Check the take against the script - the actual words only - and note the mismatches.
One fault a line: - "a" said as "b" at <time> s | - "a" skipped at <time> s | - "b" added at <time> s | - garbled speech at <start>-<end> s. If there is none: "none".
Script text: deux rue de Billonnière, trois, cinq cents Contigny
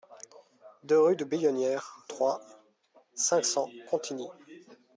none